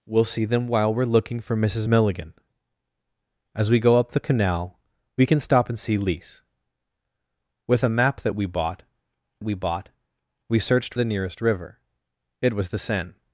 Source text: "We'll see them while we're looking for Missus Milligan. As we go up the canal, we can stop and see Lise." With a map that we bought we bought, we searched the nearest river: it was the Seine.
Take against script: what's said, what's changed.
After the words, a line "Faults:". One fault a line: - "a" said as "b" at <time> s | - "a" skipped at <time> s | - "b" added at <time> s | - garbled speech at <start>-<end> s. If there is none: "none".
"We'll see them while we're looking for Missus Milligan. As we go up the canal, we can stop and see Lise." With a map that we bought we bought, we searched the nearest river: it was the Seine.
Faults:
none